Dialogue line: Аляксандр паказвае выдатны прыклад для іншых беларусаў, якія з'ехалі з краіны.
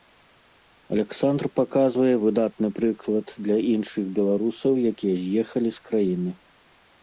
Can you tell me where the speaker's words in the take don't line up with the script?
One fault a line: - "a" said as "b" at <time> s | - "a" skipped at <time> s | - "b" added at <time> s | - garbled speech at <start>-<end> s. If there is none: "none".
none